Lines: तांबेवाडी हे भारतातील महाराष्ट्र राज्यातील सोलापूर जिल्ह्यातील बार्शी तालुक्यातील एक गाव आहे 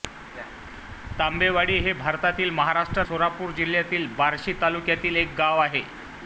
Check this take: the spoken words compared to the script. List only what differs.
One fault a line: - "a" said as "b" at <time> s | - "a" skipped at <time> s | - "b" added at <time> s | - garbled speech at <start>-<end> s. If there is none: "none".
- "राज्यातील" skipped at 3.0 s